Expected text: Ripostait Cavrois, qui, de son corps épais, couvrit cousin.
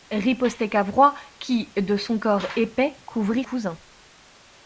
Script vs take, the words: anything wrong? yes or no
no